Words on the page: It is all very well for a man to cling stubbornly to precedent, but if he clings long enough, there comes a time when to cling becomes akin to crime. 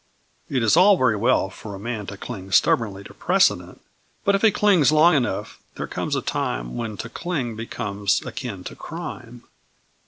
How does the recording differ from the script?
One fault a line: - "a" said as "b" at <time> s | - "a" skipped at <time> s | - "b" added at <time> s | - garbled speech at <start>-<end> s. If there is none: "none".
none